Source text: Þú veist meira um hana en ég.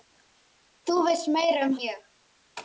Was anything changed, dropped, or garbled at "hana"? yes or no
yes